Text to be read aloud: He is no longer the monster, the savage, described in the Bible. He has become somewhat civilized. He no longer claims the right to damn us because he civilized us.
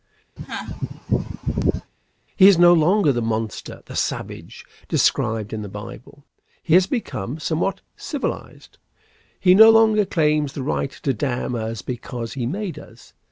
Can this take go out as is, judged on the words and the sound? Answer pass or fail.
fail